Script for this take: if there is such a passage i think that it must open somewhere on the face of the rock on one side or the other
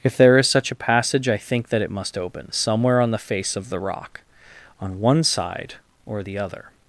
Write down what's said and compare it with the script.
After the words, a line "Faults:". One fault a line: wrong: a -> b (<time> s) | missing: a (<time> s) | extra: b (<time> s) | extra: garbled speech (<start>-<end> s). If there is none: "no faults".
if there is such a passage i think that it must open somewhere on the face of the rock on one side or the other
Faults:
no faults